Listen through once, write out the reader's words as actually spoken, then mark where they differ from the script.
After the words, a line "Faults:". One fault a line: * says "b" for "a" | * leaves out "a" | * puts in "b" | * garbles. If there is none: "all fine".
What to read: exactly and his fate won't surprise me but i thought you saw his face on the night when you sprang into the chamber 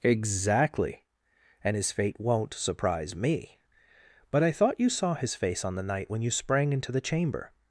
exactly and his fate won't surprise me but i thought you saw his face on the night when you sprang into the chamber
Faults:
all fine